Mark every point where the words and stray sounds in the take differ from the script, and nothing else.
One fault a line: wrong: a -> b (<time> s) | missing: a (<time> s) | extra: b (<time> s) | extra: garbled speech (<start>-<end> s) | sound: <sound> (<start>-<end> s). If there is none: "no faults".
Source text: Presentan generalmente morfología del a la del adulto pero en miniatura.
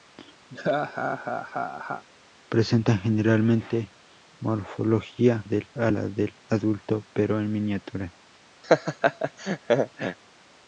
sound: laugh (0.5-2.0 s)
sound: laugh (8.6-10.2 s)